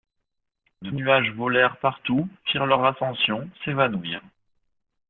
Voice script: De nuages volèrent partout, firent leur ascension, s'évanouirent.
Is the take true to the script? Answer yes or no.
yes